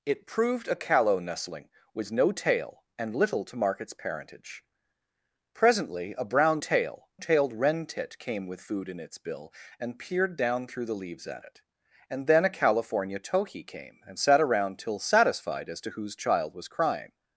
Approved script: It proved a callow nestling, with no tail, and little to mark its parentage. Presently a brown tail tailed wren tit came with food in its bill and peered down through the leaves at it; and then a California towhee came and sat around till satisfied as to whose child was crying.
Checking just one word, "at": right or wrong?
right